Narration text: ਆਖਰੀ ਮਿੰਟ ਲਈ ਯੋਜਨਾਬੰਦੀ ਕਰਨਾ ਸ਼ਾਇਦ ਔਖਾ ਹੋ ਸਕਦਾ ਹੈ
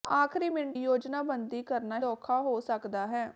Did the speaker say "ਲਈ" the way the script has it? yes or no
no